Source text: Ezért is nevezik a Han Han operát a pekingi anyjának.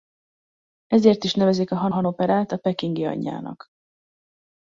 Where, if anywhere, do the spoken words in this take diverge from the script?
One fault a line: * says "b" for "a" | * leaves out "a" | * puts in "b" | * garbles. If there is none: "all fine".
all fine